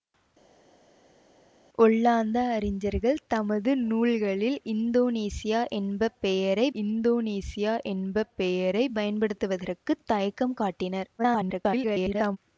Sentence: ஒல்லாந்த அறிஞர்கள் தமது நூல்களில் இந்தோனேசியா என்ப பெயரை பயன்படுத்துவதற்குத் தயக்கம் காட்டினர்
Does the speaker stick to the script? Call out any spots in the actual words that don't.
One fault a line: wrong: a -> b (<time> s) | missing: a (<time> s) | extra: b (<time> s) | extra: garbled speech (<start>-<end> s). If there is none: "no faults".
extra: இந்தோனேசியா என்ப பெயரை (6.8 s)
extra: garbled speech (11.2-12.4 s)